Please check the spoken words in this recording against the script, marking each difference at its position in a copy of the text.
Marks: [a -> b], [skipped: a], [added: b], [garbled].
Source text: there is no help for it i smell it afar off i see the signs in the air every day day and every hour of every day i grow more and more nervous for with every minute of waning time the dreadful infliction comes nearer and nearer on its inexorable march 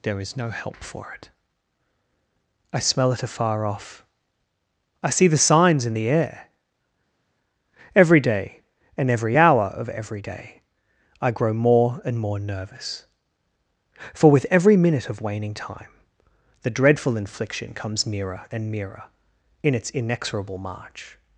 there is no help for it i smell it afar off i see the signs in the air every day [skipped: day] and every hour of every day i grow more and more nervous for with every minute of waning time the dreadful infliction comes nearer and nearer [on -> in] its inexorable march